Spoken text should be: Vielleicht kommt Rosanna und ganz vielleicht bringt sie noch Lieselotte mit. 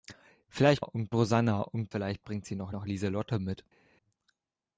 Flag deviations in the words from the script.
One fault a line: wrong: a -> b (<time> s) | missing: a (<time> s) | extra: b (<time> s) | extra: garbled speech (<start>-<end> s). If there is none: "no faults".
wrong: kommt -> und (0.8 s)
missing: ganz (1.9 s)
extra: noch (2.7 s)